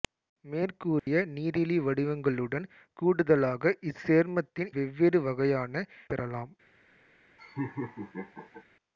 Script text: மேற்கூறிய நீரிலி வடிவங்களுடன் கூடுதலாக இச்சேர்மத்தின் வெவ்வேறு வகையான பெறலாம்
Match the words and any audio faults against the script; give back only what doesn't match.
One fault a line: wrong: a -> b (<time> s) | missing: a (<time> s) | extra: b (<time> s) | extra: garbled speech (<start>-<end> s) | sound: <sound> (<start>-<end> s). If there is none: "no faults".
sound: dropout (1.0-1.1 s)
sound: laugh (7.4-8.6 s)